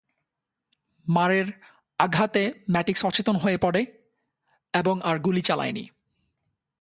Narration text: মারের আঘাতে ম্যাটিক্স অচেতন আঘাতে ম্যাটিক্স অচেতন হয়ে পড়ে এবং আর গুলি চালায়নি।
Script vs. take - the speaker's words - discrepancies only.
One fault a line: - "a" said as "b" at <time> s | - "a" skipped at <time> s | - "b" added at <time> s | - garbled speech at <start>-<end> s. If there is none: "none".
- "আঘাতে ম্যাটিক্স অচেতন" skipped at 3.4 s